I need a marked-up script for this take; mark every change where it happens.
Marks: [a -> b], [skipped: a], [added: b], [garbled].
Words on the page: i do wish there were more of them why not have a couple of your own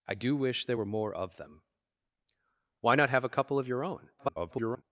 i do wish there were more of them why not have a couple of your own [garbled]